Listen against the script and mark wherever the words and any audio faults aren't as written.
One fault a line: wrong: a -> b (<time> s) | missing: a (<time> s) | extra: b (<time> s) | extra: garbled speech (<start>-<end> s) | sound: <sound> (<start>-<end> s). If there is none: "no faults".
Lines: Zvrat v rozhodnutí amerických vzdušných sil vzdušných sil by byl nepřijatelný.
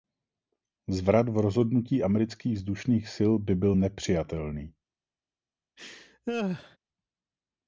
missing: vzdušných sil (3.3 s)
sound: laugh (5.8-6.8 s)